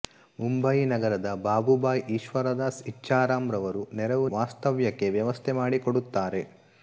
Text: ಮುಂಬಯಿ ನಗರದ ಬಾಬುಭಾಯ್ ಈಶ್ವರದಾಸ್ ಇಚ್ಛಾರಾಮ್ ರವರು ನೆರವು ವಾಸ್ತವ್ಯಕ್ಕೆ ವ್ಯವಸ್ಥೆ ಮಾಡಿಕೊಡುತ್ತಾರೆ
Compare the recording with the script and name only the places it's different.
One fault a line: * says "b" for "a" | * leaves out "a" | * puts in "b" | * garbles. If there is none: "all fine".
all fine